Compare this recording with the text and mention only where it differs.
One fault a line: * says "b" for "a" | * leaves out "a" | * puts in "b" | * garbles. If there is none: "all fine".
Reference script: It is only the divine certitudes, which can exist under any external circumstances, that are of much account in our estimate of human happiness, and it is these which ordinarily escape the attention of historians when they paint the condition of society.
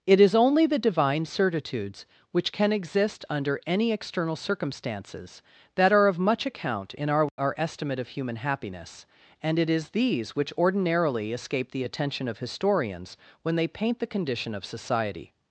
* puts in "our"